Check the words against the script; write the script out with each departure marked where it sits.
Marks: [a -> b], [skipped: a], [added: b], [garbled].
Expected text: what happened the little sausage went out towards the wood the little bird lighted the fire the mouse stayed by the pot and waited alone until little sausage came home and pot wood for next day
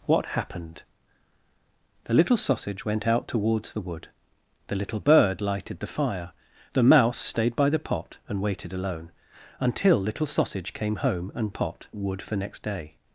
what happened the little sausage went out towards the wood the little bird lighted the fire the mouse stayed by the pot and waited alone until little sausage came home and pot wood for next day